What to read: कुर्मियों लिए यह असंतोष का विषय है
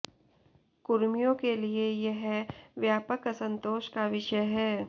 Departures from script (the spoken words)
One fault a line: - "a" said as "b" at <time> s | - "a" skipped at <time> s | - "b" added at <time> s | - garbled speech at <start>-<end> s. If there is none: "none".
- "के" added at 1.4 s
- "व्यापक" added at 2.8 s